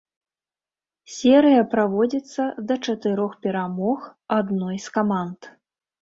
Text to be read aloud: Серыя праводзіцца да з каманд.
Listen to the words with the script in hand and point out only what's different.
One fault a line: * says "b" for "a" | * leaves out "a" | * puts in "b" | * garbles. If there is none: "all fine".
* puts in "чатырох перамог адной"